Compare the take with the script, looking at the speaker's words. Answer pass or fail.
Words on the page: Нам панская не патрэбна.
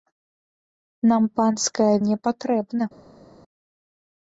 pass